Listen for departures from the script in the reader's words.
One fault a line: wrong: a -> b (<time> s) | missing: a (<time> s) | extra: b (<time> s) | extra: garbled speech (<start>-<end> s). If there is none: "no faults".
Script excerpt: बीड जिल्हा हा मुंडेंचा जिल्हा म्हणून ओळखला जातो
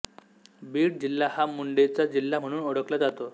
no faults